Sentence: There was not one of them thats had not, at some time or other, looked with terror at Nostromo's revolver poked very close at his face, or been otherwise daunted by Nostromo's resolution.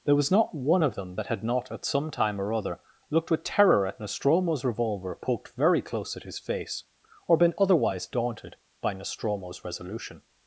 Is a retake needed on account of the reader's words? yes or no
yes